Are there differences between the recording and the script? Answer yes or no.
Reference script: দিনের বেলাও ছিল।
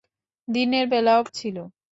no